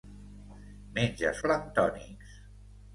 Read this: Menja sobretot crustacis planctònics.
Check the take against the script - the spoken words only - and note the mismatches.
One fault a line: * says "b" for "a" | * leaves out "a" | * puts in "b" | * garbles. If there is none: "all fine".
* leaves out "sobretot crustacis"